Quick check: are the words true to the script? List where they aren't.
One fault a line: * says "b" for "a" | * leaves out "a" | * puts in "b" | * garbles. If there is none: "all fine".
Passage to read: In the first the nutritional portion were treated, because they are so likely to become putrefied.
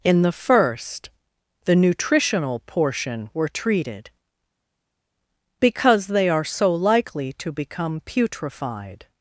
all fine